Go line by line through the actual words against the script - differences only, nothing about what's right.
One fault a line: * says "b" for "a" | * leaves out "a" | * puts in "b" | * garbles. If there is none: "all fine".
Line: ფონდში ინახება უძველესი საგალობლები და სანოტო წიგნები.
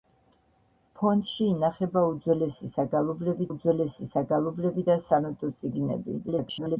* puts in "უძველესი საგალობლები"
* garbles